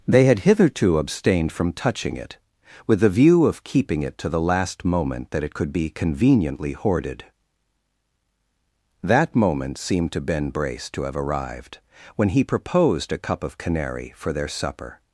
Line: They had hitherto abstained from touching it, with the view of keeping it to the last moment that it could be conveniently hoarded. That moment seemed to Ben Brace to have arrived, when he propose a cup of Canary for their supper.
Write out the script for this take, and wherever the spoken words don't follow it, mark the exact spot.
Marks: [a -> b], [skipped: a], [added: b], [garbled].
They had hitherto abstained from touching it, with the view of keeping it to the last moment that it could be conveniently hoarded. That moment seemed to Ben Brace to have arrived, when he [propose -> proposed] a cup of Canary for their supper.